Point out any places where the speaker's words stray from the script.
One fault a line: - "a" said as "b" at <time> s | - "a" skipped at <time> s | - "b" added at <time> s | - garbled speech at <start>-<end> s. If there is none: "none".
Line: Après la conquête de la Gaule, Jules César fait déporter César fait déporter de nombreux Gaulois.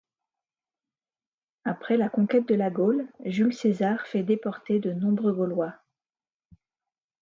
- "César fait déporter" skipped at 4.8 s